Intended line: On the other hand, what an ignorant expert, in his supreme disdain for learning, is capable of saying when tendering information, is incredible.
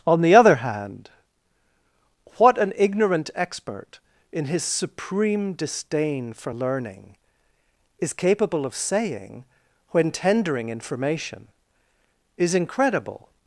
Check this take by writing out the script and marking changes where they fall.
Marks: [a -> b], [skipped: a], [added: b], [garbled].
On the other hand, what an ignorant expert, in his supreme disdain for learning, is capable of saying when tendering information, is incredible.